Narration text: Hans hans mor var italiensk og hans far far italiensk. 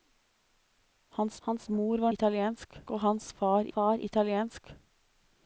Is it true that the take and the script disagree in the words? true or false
false